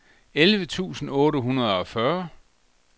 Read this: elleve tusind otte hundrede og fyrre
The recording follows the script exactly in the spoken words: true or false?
true